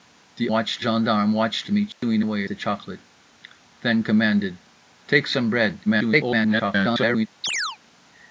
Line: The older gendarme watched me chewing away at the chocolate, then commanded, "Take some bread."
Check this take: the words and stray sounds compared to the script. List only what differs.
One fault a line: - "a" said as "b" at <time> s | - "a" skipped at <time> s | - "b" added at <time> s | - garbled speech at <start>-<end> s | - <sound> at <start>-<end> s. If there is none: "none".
- "older" said as "watched" at 0.5 s
- dropout at 1.9-2.0 s
- "at" skipped at 2.4 s
- garbled speech at 5.9-7.3 s
- chirp at 7.4-7.8 s